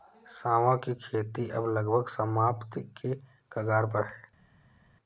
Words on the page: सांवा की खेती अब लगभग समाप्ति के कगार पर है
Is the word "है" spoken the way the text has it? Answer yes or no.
yes